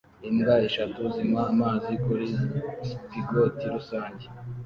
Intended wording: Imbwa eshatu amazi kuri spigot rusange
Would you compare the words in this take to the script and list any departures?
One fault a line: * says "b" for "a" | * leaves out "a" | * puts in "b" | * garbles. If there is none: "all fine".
* puts in "zinywa"